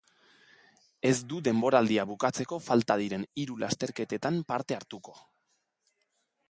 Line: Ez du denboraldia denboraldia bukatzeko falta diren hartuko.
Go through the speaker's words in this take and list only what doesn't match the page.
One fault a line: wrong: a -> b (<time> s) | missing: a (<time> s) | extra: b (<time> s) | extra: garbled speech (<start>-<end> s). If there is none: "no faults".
missing: denboraldia (2.0 s)
extra: hiru lasterketetan parte (3.4 s)